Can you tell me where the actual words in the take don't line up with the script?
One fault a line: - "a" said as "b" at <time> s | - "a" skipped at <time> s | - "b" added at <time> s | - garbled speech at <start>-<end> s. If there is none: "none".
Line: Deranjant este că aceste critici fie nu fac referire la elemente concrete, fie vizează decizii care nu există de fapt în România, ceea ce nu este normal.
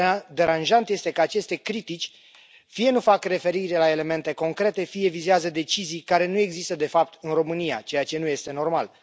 none